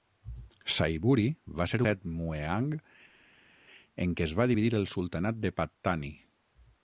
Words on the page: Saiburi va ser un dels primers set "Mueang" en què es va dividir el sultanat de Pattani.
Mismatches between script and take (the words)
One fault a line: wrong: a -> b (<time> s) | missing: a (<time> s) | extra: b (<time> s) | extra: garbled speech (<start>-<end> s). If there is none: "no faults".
missing: un dels primers (1.8 s)